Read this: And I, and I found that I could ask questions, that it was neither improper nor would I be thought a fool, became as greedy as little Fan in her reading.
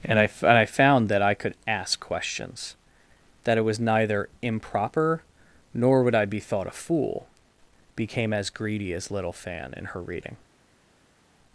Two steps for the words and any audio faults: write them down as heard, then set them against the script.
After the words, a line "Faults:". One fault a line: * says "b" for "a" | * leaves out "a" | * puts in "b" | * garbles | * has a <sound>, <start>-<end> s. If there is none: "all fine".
And I, and I found that I could ask questions, that it was neither improper nor would I be thought a fool, became as greedy as little Fan in her reading.
Faults:
all fine